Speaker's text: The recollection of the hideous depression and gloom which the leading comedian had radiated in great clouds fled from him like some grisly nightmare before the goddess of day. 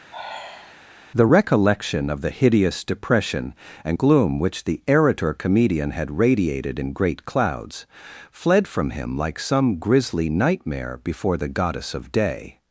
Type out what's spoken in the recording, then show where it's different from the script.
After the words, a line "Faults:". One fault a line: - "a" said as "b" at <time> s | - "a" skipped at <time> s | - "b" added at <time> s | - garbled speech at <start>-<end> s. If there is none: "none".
The recollection of the hideous depression and gloom which the erator comedian had radiated in great clouds fled from him like some grisly nightmare before the goddess of day.
Faults:
- "leading" said as "erator" at 4.9 s